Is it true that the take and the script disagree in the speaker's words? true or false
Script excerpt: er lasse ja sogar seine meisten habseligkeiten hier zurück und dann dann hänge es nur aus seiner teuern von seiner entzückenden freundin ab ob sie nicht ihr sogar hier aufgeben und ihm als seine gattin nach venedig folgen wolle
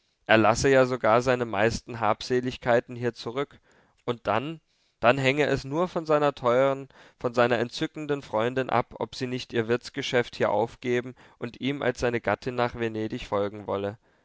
true